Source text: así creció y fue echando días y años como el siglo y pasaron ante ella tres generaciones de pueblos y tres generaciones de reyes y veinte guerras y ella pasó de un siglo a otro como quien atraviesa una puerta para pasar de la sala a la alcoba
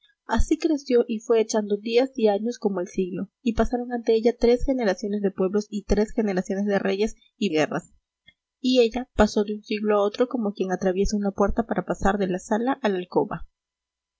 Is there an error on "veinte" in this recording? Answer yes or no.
yes